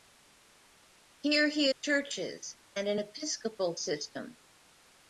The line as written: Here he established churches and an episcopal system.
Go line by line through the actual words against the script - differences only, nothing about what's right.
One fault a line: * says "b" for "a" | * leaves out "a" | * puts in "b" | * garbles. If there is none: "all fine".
* leaves out "established"